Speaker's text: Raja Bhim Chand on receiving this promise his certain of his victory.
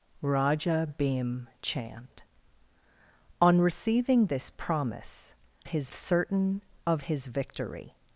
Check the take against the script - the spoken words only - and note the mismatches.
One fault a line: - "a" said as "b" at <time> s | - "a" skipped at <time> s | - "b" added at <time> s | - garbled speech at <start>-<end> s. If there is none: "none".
none